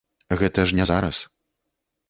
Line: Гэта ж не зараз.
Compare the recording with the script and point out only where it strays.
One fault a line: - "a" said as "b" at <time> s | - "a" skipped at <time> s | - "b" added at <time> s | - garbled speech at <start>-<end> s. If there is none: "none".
none